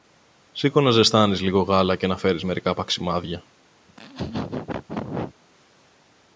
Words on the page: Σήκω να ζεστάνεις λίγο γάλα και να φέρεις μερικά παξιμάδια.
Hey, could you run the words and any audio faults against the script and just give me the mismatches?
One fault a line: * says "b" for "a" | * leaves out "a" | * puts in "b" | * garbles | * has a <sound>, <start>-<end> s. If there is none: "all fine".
* has a laugh, 3.9-5.4 s